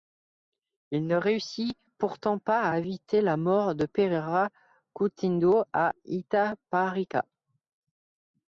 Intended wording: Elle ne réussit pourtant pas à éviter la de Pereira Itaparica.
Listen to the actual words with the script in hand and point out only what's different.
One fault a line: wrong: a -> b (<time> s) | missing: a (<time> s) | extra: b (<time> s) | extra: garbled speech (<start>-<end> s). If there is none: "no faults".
wrong: Elle -> Il (0.9 s)
extra: mort (3.4 s)
extra: Coutinho à (4.9 s)